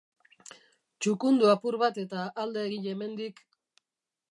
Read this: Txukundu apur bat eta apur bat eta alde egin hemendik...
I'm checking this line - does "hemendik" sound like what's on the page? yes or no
yes